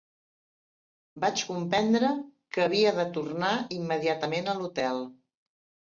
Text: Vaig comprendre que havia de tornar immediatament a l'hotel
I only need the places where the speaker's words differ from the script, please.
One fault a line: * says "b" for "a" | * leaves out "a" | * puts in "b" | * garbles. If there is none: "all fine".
all fine